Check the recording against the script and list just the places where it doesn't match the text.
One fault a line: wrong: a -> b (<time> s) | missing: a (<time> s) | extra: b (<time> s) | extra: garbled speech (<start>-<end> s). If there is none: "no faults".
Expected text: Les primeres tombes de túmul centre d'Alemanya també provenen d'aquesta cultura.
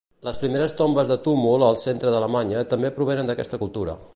extra: al (1.7 s)